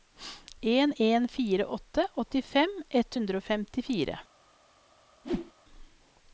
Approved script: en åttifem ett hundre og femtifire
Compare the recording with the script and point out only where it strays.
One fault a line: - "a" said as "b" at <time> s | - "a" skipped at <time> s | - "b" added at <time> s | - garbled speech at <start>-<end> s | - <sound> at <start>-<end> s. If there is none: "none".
- "en fire åtte" added at 0.9 s
- whoosh at 5.2-5.5 s